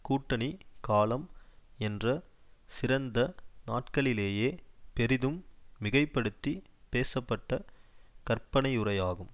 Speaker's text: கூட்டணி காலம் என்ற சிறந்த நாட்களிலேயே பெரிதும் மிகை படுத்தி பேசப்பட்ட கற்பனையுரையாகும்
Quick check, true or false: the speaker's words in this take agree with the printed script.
true